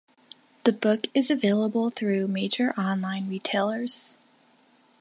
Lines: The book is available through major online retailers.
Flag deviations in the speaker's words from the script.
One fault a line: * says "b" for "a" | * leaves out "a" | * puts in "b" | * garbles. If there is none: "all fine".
all fine